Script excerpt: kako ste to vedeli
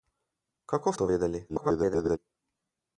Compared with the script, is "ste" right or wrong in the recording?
wrong